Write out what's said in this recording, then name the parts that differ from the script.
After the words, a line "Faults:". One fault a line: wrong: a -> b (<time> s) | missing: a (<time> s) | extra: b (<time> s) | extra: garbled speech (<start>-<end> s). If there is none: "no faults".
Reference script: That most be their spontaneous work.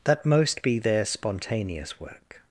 That most be their spontaneous work.
Faults:
no faults